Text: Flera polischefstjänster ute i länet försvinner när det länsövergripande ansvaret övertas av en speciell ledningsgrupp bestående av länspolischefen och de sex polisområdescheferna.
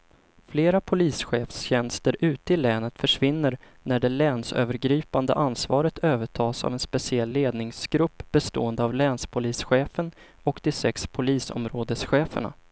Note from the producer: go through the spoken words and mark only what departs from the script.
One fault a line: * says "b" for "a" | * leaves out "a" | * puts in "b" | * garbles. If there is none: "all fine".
all fine